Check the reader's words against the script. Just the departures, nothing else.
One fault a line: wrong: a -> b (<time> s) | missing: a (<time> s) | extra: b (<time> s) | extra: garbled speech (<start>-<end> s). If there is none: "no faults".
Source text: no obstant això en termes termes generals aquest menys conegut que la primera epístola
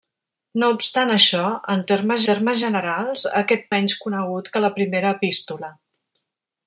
no faults